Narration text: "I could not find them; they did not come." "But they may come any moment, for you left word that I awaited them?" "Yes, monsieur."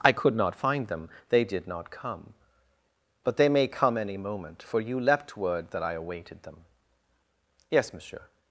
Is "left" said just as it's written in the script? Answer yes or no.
no